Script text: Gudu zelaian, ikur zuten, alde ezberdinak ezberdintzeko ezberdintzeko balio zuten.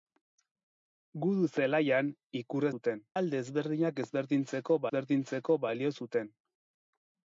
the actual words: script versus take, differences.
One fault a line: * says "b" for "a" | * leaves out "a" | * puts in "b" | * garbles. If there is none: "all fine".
all fine